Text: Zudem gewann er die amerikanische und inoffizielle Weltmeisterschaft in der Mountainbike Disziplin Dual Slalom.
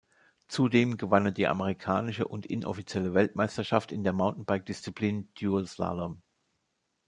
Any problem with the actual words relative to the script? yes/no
no